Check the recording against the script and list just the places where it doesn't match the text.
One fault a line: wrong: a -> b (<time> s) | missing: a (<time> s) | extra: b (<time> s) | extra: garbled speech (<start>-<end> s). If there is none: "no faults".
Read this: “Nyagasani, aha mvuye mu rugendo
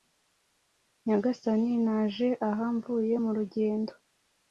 extra: naje (1.9 s)